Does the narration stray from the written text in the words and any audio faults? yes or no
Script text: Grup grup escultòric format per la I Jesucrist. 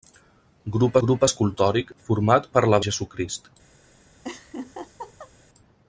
yes